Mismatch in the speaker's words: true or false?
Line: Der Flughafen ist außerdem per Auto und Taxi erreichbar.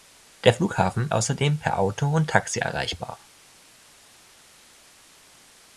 true